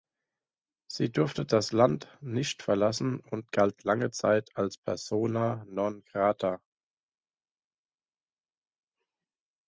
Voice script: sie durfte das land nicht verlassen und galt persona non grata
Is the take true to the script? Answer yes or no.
no